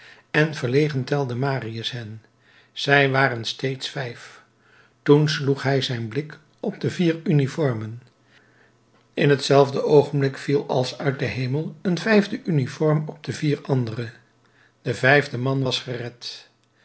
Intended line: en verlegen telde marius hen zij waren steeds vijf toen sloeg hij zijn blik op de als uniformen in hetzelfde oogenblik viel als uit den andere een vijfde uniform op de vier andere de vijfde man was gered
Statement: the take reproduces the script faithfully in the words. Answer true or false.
false